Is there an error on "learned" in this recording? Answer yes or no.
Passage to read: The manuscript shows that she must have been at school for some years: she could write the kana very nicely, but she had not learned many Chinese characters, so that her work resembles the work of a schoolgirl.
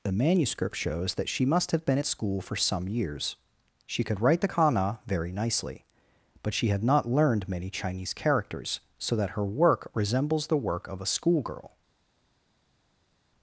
no